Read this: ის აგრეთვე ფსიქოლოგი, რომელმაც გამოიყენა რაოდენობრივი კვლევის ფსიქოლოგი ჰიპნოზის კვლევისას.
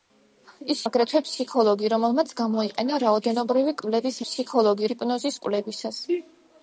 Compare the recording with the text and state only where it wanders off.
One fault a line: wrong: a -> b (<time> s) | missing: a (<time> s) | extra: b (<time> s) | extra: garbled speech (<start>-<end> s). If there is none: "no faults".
no faults